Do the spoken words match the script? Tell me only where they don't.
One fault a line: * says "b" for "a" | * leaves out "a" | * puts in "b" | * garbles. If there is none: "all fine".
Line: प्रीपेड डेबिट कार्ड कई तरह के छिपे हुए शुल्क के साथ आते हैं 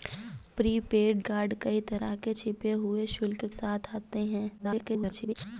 * leaves out "डेबिट"
* leaves out "के"
* garbles